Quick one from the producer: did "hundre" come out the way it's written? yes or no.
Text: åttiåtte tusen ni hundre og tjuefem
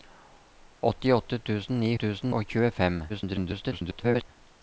no